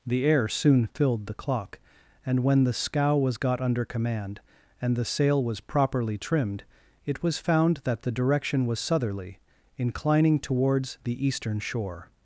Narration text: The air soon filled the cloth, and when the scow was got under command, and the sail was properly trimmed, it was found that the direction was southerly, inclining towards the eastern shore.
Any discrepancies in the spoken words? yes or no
yes